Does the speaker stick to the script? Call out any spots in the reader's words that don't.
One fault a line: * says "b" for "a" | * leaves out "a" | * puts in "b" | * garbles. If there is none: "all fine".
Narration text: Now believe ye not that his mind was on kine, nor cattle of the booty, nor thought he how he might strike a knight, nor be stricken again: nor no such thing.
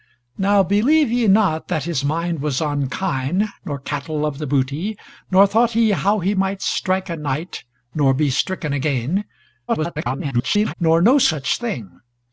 * garbles